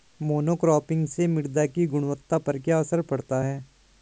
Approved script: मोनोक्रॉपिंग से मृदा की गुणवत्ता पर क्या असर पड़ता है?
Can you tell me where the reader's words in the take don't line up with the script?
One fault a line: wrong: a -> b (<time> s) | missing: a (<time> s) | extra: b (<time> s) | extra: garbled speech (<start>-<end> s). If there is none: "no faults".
no faults